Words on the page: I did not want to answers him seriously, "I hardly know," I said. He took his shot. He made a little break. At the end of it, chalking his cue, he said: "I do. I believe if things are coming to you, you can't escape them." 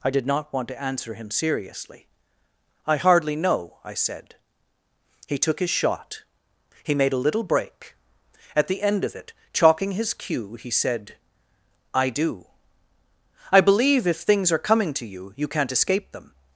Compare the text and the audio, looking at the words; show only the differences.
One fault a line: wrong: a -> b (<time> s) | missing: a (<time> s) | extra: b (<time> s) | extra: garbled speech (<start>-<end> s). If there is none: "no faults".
wrong: answers -> answer (0.8 s)